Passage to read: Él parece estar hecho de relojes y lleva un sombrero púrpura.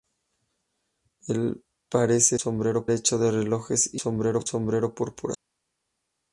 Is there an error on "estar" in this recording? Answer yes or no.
yes